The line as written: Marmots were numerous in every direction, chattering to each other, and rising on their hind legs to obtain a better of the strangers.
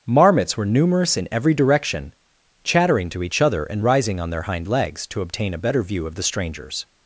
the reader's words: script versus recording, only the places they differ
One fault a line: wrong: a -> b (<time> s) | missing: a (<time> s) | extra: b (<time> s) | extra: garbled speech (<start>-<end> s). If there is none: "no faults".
extra: view (5.8 s)